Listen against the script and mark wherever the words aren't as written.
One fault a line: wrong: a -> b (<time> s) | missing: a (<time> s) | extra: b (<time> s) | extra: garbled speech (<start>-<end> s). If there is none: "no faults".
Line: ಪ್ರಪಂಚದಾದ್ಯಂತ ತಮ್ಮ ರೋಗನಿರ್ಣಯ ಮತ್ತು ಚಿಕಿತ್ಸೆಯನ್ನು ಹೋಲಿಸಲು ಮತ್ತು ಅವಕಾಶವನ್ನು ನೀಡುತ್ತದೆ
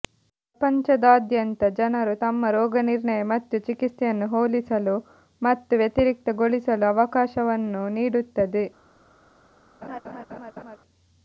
extra: ಜನರು (1.8 s)
extra: ವ್ಯತಿರಿಕ್ತಗೊಳಿಸಲು (5.8 s)